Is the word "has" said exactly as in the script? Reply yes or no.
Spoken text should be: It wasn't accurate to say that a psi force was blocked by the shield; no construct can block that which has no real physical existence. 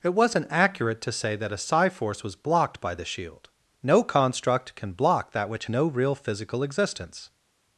no